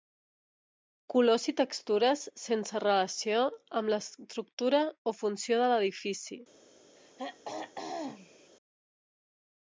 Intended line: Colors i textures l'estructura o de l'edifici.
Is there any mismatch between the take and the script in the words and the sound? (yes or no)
yes